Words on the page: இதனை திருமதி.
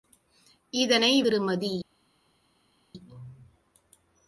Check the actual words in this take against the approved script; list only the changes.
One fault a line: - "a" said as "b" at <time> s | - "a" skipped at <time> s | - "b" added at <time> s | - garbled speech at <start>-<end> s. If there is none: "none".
none